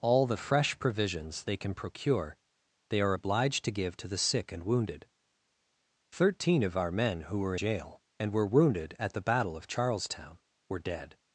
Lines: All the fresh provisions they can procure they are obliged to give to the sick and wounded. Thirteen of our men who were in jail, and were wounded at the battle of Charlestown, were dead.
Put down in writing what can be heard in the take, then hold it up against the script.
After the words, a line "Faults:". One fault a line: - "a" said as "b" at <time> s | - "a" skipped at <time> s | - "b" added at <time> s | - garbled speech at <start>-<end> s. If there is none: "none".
All the fresh provisions they can procure they are obliged to give to the sick and wounded. Thirteen of our men who were jail, and were wounded at the battle of Charlestown, were dead.
Faults:
- "in" skipped at 7.5 s